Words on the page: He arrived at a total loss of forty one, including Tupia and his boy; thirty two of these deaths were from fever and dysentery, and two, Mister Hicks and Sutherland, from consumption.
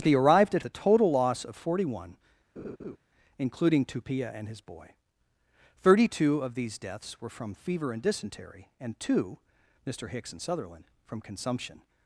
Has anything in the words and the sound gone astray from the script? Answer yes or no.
yes